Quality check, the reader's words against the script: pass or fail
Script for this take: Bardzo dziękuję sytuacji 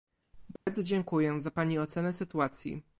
fail